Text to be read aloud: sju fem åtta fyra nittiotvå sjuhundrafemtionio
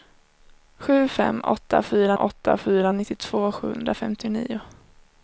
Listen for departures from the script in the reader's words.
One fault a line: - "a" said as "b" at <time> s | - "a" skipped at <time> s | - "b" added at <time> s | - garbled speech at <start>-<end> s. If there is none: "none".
- "åtta fyra" added at 2.2 s